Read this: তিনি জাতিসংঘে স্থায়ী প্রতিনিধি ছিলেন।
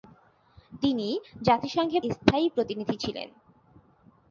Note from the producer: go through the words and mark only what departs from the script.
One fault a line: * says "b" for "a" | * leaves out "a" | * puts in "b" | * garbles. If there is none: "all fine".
all fine